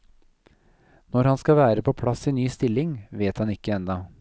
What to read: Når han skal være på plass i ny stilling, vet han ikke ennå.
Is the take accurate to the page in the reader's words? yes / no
yes